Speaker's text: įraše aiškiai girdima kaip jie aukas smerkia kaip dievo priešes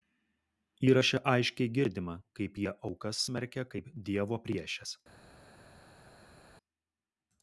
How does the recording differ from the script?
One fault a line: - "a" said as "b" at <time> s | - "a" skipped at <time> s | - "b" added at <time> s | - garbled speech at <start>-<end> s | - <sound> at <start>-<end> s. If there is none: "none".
none